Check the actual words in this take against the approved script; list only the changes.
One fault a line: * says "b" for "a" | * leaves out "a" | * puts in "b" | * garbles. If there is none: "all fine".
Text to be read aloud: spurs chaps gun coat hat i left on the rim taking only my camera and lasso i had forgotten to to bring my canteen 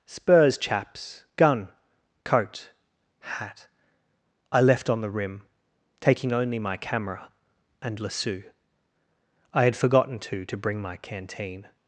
all fine